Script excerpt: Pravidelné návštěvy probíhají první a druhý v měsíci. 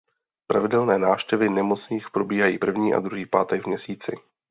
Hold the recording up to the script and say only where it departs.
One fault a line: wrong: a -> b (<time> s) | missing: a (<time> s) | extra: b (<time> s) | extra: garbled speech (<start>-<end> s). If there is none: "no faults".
extra: nemocných (1.5 s)
extra: pátek (3.3 s)